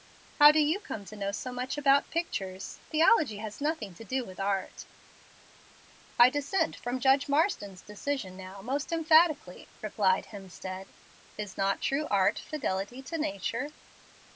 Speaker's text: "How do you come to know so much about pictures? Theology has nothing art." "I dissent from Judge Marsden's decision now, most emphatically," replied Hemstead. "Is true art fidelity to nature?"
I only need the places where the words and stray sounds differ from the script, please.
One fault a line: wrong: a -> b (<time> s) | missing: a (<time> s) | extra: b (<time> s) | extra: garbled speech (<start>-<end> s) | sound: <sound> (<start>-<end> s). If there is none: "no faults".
extra: to do with (3.9 s)
extra: not (11.6 s)